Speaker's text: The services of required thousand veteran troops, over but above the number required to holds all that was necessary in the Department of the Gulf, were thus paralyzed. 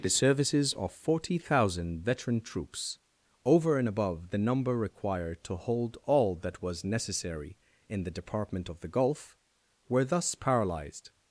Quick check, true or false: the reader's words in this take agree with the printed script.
false